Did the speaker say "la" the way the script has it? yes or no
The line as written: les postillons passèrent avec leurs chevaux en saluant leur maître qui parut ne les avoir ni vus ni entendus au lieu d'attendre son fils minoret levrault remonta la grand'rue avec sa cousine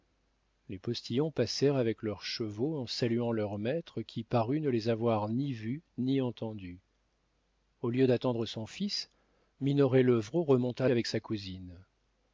no